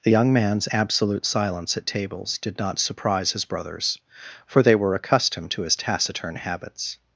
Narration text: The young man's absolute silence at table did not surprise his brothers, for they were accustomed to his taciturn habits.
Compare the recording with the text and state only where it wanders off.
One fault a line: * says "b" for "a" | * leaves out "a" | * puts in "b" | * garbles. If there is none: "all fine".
* says "tables" for "table"